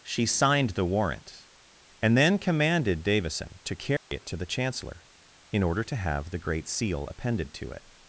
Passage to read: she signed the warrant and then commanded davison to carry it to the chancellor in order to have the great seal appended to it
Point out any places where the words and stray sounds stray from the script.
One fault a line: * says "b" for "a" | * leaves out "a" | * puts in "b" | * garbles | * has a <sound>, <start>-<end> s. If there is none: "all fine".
* has a dropout, 4.0-4.1 s